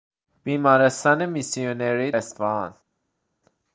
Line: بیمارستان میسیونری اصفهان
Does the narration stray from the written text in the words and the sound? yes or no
no